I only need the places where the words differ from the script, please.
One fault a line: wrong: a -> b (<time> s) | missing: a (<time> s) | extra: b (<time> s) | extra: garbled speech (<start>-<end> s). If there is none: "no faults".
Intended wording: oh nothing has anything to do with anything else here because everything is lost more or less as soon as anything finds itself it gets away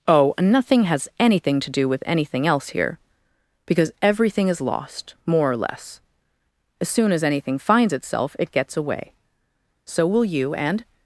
extra: so will you and (9.8 s)